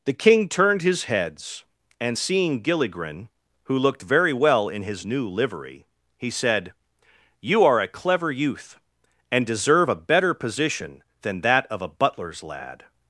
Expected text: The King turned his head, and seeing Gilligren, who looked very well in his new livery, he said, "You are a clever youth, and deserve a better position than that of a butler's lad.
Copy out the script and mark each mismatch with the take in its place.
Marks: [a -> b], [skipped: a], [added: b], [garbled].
The King turned his [head, -> heads] and seeing Gilligren, who looked very well in his new livery, he said, "You are a clever youth, and deserve a better position than that of a butler's lad.